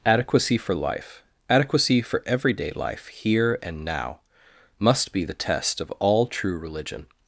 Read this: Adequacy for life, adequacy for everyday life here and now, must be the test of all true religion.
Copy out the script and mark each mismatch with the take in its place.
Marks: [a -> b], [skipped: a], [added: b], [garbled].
Adequacy for life, adequacy for everyday life here and now, must be the test of all true religion.